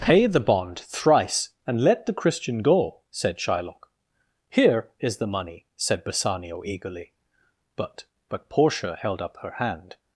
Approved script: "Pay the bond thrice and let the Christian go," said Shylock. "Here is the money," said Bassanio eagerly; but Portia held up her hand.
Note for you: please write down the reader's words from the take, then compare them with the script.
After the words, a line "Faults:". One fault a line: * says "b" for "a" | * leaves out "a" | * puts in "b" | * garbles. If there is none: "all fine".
"Pay the bond thrice and let the Christian go," said Shylock. "Here is the money," said Bassanio eagerly; but but Portia held up her hand.
Faults:
* puts in "but"